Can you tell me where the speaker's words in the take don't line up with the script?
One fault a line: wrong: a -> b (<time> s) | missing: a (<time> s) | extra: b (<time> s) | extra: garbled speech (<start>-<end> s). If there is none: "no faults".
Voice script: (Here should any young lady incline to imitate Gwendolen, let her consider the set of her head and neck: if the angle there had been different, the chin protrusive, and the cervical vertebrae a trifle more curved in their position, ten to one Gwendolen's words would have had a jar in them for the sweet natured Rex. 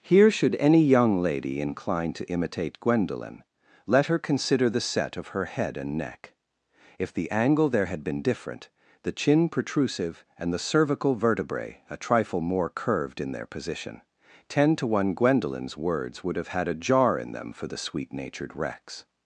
no faults